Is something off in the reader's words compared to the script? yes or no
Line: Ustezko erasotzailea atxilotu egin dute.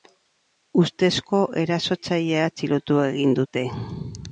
no